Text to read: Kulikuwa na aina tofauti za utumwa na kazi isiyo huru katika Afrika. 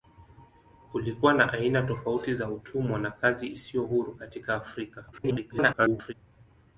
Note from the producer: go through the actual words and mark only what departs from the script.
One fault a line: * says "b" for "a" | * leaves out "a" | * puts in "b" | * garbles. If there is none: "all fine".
* garbles